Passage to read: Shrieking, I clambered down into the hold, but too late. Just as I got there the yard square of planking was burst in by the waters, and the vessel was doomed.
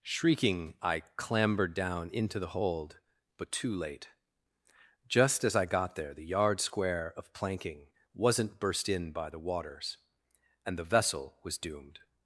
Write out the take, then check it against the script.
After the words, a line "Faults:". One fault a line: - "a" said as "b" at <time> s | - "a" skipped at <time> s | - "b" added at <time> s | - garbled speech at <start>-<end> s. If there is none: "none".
Shrieking, I clambered down into the hold, but too late. Just as I got there the yard square of planking wasn't burst in by the waters, and the vessel was doomed.
Faults:
- "was" said as "wasn't" at 8.1 s